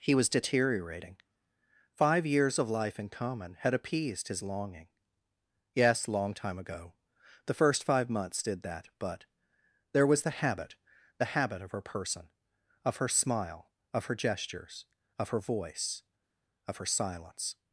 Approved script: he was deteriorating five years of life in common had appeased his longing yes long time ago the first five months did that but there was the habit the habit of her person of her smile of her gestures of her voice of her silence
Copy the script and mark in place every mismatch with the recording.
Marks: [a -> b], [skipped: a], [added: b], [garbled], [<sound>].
he was deteriorating five years of life in common had appeased his longing yes long time ago the first five months did that but there was the habit the habit of her person of her smile of her gestures of her voice of her silence